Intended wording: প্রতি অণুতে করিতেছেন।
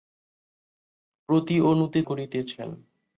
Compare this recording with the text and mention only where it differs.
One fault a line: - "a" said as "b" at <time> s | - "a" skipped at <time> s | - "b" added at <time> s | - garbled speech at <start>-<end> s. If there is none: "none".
none